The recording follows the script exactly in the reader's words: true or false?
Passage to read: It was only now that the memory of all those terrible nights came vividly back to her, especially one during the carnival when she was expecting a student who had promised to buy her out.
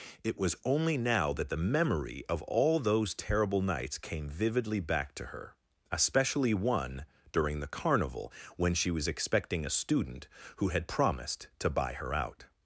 true